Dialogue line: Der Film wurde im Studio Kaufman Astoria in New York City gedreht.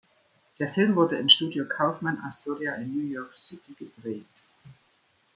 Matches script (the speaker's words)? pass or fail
pass